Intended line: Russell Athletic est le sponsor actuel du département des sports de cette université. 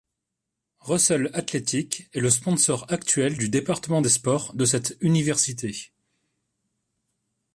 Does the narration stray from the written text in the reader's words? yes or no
no